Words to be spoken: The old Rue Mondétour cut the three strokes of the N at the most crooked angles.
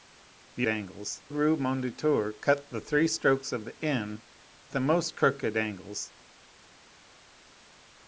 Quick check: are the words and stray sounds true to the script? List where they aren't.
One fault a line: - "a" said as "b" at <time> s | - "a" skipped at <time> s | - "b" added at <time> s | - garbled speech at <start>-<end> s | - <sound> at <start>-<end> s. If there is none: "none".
- "old" said as "angles" at 0.7 s
- "at" skipped at 4.2 s